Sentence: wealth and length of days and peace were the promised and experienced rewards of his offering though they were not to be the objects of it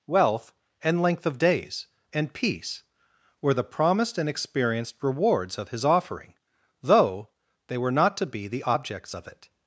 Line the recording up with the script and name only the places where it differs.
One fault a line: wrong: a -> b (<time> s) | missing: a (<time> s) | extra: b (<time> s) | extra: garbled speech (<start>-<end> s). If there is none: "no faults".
no faults